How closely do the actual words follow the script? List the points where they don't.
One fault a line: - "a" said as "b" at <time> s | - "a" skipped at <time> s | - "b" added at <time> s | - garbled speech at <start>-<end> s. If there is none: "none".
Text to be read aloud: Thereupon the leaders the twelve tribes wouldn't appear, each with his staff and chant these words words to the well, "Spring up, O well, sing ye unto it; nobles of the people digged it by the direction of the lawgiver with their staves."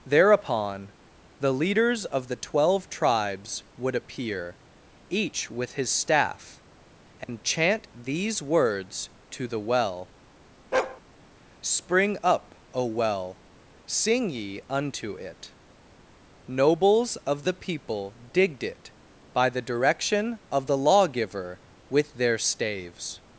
- "of" added at 2.0 s
- "wouldn't" said as "would" at 3.8 s
- "words" skipped at 9.1 s